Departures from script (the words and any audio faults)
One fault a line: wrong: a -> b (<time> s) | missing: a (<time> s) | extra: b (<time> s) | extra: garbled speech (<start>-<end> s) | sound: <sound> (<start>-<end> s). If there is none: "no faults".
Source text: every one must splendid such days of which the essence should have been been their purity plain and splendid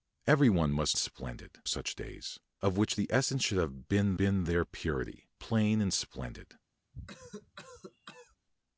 sound: cough (6.9-8.4 s)